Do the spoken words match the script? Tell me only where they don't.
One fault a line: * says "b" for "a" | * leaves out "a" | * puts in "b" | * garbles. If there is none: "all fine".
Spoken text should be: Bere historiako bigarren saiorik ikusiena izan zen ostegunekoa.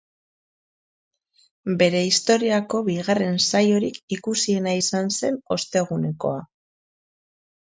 all fine